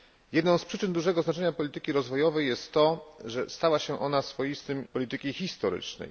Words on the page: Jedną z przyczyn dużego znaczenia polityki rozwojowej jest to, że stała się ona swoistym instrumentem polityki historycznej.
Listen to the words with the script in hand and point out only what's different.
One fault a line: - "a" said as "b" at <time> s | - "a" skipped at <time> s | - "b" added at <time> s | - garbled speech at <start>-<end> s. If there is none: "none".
- "instrumentem" skipped at 4.9 s